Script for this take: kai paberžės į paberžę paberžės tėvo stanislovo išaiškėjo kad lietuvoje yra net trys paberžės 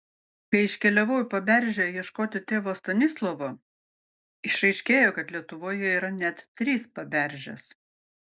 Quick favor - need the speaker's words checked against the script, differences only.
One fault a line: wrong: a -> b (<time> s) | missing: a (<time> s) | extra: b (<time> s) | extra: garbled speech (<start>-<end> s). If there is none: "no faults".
wrong: paberžės -> iškeliavau (0.7 s)
wrong: paberžės -> ieškoti (2.0 s)